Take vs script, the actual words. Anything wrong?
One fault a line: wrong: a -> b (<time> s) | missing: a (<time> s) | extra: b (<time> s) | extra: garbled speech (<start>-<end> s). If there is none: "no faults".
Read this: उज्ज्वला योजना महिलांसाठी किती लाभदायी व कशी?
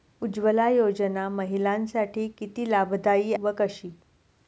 no faults